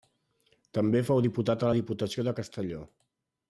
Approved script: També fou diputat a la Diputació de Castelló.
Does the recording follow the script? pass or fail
pass